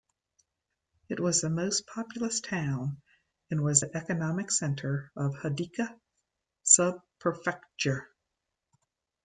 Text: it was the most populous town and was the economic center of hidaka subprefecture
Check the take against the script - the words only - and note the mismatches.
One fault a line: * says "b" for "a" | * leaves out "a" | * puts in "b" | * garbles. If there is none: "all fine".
all fine